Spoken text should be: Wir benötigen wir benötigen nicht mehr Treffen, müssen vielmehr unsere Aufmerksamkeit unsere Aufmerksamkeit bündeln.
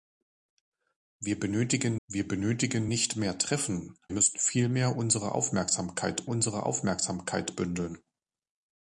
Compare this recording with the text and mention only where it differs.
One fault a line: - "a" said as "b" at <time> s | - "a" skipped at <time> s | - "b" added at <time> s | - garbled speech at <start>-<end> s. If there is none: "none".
none